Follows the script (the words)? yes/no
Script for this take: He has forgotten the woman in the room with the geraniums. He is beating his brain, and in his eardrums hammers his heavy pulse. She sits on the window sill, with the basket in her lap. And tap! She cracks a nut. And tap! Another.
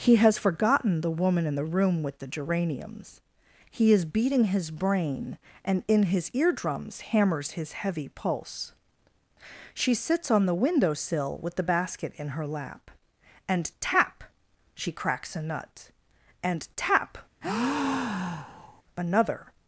yes